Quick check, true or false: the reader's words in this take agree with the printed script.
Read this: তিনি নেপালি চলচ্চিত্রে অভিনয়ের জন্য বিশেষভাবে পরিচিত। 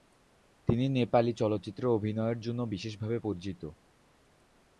true